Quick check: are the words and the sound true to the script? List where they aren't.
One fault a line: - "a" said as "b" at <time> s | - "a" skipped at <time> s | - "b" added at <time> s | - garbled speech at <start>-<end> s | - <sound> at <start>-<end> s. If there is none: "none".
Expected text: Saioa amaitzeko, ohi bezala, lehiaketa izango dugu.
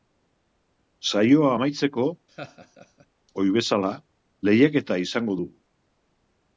- laugh at 2.3-3.1 s